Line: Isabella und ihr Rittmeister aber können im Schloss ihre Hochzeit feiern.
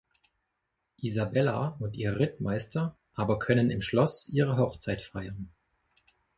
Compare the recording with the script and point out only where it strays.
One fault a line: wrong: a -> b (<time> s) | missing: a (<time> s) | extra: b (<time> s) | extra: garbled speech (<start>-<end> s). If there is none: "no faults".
no faults